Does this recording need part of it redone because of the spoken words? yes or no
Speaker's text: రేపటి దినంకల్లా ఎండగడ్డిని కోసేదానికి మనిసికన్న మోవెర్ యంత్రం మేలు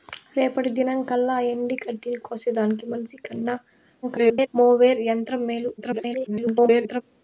yes